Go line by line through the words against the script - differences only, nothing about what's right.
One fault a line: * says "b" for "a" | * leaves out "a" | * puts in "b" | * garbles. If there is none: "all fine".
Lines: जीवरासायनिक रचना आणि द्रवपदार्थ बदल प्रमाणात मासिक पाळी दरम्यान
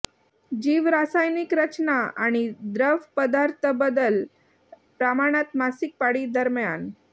all fine